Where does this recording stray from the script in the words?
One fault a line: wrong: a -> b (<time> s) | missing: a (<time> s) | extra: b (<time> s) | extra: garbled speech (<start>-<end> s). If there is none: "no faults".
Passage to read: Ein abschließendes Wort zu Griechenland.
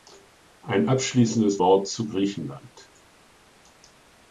no faults